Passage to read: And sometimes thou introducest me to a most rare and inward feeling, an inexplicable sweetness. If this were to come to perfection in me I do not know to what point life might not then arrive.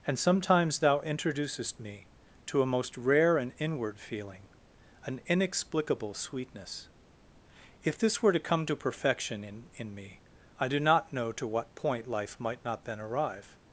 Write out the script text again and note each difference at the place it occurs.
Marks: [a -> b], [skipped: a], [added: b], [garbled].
And sometimes thou introducest me to a most rare and inward feeling, an inexplicable sweetness. If this were to come to perfection in [added: in] me I do not know to what point life might not then arrive.